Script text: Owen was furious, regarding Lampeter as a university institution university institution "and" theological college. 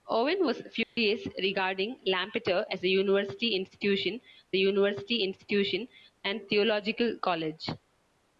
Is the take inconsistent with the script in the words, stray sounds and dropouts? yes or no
yes